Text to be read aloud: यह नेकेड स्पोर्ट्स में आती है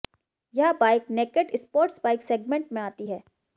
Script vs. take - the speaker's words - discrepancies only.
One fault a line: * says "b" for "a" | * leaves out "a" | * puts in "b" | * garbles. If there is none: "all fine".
* puts in "बाइक"
* puts in "बाइक सेगमेंट"